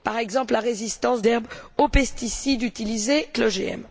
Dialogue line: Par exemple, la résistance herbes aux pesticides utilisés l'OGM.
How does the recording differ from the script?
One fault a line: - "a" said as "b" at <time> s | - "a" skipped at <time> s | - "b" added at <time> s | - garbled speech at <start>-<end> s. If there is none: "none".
none